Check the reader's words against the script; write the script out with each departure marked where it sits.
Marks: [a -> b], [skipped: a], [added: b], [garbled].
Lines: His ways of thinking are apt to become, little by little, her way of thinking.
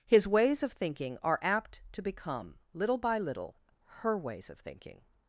His ways of thinking are apt to become, little by little, her [way -> ways] of thinking.